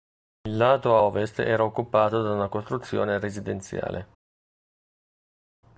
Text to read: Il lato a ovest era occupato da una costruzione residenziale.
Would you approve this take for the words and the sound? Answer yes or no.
yes